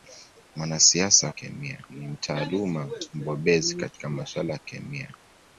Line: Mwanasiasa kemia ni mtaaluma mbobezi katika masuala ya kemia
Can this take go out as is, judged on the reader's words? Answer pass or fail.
pass